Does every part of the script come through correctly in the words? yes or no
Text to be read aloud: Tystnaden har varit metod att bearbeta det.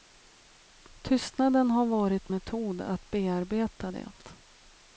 yes